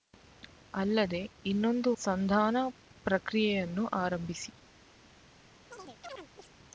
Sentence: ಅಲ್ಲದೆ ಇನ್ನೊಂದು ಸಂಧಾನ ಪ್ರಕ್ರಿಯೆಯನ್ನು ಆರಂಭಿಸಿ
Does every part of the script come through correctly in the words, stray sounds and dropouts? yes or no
no